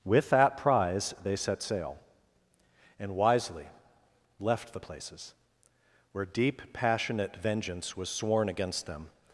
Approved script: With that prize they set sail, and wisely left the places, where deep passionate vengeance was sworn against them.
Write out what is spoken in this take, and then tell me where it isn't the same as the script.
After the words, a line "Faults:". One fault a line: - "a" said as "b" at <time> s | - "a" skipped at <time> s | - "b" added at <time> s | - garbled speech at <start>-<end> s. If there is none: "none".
With that prize they set sail, and wisely left the places, where deep passionate vengeance was sworn against them.
Faults:
none